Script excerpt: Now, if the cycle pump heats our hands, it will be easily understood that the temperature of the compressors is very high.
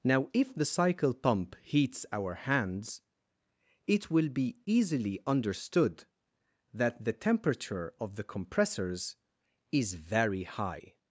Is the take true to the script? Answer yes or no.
yes